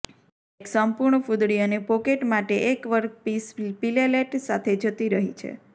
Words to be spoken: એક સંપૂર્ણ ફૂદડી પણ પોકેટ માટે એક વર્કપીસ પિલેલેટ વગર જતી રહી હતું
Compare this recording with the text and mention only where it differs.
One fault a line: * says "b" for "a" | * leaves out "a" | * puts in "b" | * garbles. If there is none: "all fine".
* says "અને" for "પણ"
* says "સાથે" for "વગર"
* says "છે" for "હતું"